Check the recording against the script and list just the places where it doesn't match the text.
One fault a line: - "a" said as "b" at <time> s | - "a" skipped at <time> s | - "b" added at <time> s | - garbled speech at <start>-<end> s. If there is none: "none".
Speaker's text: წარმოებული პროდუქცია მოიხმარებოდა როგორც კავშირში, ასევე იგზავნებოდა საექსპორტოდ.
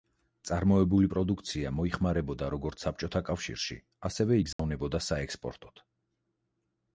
- "საბჭოთა" added at 2.9 s